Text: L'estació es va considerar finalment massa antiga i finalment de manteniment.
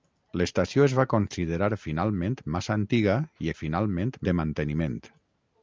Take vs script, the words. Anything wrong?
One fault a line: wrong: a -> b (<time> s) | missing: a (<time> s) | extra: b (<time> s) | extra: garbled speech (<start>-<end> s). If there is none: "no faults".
no faults